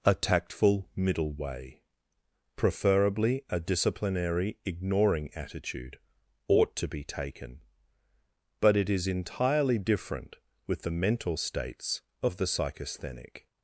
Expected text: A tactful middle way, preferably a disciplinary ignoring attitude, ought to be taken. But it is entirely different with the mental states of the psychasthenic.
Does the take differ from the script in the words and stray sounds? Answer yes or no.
no